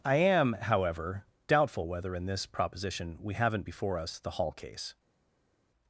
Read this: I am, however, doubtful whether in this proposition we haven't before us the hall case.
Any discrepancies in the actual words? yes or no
no